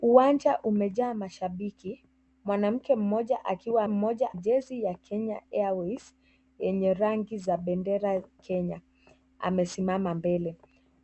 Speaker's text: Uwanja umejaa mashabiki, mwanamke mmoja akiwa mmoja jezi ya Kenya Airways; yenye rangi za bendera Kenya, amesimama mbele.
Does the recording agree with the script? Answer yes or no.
yes